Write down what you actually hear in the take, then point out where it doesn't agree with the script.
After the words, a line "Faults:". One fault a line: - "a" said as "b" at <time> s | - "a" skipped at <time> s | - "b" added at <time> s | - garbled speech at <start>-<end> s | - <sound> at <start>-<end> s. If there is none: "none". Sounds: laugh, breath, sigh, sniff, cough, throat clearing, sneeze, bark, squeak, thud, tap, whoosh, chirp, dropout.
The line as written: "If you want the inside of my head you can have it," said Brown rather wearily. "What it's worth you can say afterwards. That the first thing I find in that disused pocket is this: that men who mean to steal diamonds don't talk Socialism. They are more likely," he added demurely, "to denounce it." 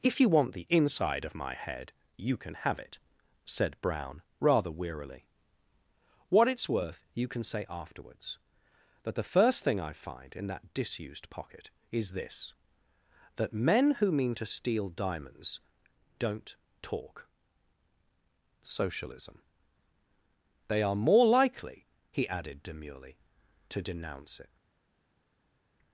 "If you want the inside of my head you can have it," said Brown rather wearily. "What it's worth you can say afterwards. That the first thing I find in that disused pocket is this: that men who mean to steal diamonds don't talk Socialism. They are more likely," he added demurely, "to denounce it."
Faults:
none